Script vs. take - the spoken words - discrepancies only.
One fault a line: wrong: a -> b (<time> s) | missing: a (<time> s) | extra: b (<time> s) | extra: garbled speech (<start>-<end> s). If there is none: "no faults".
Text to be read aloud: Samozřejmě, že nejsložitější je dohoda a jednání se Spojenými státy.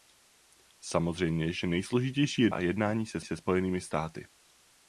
missing: dohoda (2.5 s)
extra: se (3.2 s)